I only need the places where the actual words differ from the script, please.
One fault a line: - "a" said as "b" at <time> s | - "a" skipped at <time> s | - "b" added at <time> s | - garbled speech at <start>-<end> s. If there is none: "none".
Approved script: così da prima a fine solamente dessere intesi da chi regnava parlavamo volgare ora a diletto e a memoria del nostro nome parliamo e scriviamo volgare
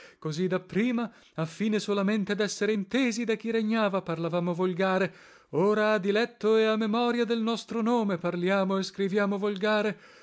none